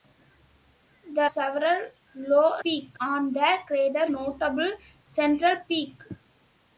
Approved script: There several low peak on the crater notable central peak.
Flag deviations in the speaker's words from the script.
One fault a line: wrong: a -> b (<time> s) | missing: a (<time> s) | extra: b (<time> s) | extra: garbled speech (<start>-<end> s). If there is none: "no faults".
no faults